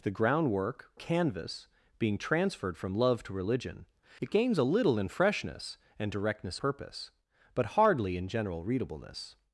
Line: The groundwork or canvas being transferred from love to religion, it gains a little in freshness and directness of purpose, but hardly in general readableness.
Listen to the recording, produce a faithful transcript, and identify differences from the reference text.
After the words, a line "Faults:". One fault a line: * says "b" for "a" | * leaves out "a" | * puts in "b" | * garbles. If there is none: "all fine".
The groundwork canvas being transferred from love to religion, it gains a little in freshness and directness purpose, but hardly in general readableness.
Faults:
* leaves out "or"
* leaves out "of"